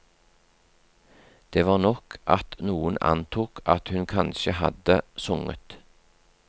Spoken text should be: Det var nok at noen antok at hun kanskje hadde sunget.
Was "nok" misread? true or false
false